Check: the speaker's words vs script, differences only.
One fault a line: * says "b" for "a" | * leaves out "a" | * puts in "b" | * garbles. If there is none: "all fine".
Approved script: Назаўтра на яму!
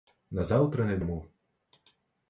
all fine